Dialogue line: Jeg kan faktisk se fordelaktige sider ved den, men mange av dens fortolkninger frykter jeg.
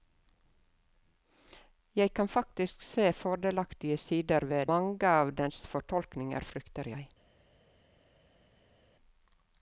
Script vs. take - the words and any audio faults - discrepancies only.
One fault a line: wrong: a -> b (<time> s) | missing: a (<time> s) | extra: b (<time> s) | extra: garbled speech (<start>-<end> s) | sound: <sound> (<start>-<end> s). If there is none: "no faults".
missing: den men (4.7 s)